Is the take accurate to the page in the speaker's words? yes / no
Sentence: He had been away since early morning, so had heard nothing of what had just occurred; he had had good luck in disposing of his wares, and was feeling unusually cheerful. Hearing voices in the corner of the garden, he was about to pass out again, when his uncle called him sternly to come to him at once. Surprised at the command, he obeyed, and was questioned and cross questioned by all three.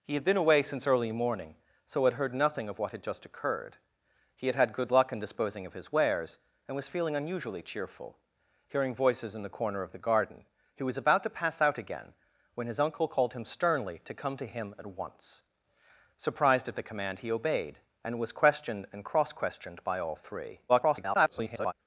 no